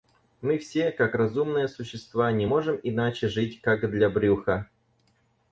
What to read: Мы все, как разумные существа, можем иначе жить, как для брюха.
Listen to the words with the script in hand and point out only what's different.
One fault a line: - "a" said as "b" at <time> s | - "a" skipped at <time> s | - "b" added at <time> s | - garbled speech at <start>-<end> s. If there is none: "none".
- "не" added at 2.3 s